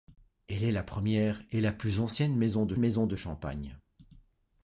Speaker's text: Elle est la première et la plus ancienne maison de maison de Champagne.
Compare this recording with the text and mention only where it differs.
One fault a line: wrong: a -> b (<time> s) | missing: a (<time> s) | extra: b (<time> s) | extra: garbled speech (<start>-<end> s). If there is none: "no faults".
no faults